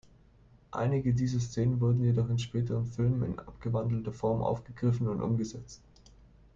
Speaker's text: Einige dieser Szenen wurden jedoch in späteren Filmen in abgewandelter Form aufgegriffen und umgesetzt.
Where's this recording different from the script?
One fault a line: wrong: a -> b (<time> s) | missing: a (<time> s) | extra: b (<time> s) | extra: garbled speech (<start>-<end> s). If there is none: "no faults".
no faults